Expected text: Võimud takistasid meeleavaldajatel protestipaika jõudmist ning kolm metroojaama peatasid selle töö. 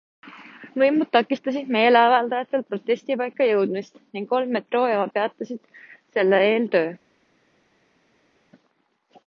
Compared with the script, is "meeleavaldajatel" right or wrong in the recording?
right